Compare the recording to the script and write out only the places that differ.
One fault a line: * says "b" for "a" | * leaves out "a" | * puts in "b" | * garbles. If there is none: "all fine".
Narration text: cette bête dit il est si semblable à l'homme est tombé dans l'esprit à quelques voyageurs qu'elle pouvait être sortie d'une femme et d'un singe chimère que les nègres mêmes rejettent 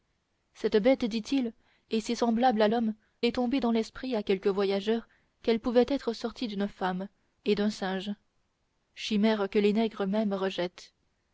all fine